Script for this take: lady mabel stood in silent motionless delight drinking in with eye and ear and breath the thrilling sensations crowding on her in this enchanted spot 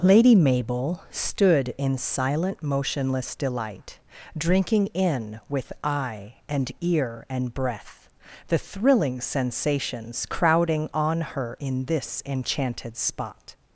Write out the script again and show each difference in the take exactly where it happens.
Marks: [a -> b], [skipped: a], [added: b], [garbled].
lady mabel stood in silent motionless delight drinking in with eye and ear and breath the thrilling sensations crowding on her in this enchanted spot